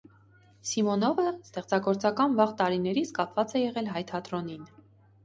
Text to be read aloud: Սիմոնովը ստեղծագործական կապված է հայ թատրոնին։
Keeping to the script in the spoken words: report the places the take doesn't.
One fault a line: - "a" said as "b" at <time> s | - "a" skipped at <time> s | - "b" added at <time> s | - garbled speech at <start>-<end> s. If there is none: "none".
- "վաղ տարիներից" added at 2.4 s
- "եղել" added at 3.6 s